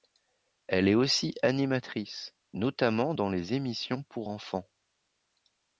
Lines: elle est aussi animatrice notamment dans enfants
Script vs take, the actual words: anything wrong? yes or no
yes